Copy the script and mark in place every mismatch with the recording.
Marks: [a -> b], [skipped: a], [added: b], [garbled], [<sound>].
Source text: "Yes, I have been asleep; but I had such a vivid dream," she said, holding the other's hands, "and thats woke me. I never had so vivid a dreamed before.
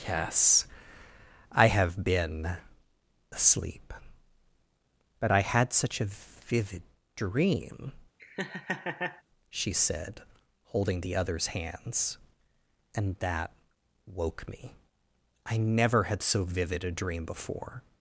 "Yes, I have been asleep; but I had such a vivid dream," [laugh] she said, holding the other's hands, "and [thats -> that] woke me. I never had so vivid a [dreamed -> dream] before.